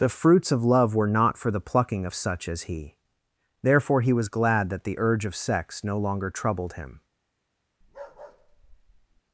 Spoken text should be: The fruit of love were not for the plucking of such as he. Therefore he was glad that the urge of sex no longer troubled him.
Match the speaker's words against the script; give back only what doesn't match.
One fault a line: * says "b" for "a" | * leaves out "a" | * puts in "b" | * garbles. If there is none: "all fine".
* says "fruits" for "fruit"